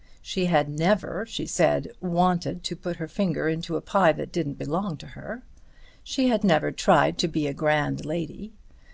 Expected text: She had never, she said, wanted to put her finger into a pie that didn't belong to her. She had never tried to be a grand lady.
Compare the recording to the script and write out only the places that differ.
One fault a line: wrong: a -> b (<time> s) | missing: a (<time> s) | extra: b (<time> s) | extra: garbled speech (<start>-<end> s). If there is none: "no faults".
no faults